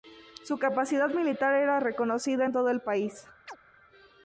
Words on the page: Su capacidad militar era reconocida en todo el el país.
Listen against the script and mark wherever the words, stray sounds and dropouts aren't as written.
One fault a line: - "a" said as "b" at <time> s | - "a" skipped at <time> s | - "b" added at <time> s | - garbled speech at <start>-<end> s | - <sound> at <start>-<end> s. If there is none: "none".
- "el" skipped at 2.8 s
- chirp at 3.5-3.6 s